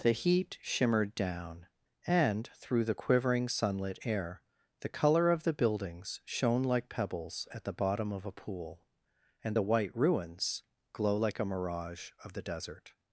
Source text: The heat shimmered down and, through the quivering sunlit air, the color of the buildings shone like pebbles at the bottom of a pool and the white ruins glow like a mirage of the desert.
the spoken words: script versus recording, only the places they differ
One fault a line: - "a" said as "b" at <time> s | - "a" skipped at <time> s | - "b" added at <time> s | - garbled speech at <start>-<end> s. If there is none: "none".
none